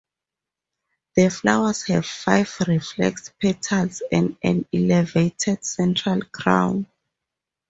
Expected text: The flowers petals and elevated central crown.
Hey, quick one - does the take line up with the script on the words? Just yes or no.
no